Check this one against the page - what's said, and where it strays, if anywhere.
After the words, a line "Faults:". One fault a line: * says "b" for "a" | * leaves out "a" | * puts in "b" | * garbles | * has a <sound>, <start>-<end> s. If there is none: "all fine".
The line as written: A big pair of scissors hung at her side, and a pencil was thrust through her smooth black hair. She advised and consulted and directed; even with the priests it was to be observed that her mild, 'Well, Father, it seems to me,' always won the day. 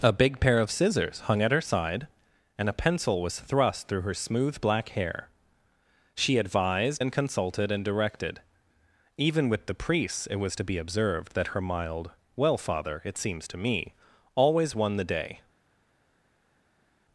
A big pair of scissors hung at her side, and a pencil was thrust through her smooth black hair. She advised and consulted and directed; even with the priests it was to be observed that her mild, 'Well, Father, it seems to me,' always won the day.
Faults:
all fine